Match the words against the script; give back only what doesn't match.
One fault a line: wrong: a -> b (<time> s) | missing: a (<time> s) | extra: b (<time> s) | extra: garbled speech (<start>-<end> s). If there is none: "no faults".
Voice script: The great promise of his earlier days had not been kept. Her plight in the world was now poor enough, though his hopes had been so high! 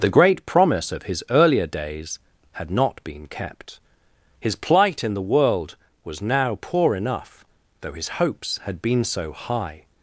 wrong: Her -> His (4.4 s)